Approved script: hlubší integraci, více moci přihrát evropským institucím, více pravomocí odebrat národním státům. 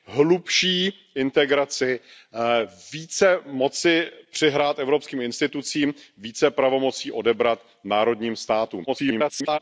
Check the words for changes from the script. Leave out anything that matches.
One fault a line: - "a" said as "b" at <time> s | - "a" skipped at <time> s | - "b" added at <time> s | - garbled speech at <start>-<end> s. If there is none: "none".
- garbled speech at 8.9-9.6 s